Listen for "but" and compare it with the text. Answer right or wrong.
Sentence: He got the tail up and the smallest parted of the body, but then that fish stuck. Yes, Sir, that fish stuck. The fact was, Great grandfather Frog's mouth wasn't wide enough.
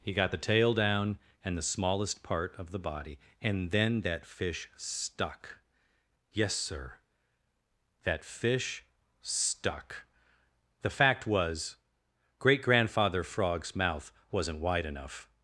wrong